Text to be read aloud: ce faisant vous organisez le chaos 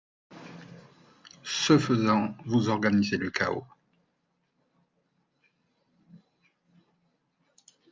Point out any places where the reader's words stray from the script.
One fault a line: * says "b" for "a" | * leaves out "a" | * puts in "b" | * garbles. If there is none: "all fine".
all fine